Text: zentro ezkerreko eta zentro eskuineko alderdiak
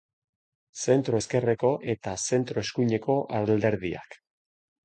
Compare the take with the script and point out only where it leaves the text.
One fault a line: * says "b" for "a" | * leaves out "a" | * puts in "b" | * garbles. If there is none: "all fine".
all fine